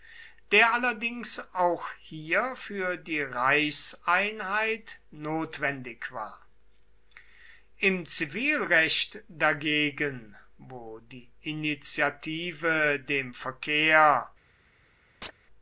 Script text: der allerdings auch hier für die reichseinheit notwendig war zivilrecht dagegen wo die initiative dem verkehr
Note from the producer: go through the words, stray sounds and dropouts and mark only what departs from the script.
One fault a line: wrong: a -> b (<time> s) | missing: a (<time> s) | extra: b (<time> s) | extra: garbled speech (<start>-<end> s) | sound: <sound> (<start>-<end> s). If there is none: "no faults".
extra: im (7.8 s)
sound: chirp (15.2-15.3 s)